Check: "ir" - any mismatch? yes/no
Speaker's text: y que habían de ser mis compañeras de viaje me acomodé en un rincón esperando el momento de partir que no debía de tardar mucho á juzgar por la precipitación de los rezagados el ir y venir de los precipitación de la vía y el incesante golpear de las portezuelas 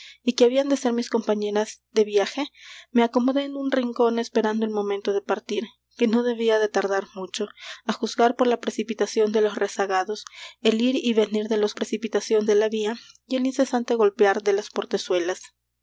no